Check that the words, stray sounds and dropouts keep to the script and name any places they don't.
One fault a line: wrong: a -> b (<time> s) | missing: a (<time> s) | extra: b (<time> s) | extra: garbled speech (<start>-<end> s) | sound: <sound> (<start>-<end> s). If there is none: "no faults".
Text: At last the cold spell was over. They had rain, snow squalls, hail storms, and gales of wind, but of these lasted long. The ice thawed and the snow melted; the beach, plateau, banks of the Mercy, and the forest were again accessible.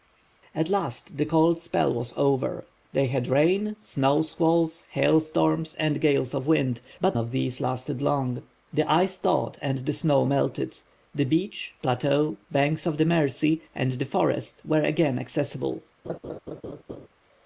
sound: laugh (16.0-17.1 s)